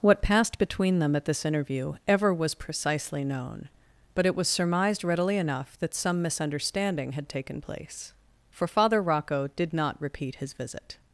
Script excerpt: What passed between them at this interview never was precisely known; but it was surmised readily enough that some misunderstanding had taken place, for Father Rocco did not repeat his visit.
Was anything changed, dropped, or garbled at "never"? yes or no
yes